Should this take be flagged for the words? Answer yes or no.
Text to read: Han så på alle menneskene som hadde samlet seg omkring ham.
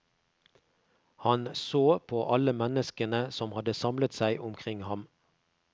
no